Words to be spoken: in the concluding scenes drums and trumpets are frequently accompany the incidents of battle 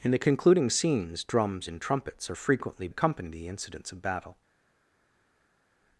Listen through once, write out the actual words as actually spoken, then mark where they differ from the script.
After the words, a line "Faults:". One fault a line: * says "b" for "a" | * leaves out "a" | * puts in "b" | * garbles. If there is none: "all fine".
in the concluding scenes drums and trumpets are frequently accompany the incidents of battle
Faults:
all fine